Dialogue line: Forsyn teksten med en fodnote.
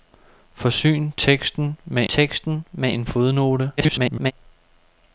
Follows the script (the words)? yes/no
no